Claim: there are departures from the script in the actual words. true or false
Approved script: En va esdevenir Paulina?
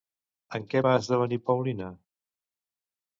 true